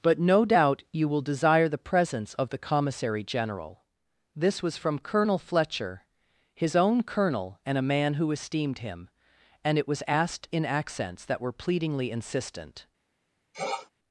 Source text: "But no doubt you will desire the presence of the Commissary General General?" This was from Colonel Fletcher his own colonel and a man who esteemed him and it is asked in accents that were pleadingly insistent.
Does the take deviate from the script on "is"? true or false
true